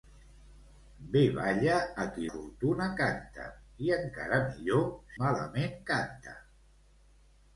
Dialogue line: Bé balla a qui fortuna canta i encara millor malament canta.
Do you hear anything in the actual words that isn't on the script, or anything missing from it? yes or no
no